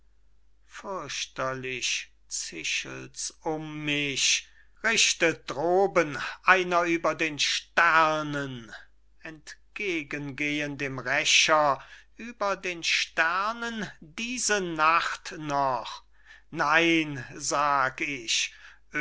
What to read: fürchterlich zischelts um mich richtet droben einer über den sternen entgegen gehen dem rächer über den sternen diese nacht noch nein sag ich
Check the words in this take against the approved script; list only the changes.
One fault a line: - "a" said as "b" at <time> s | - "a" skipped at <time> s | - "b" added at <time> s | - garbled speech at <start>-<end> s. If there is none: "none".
none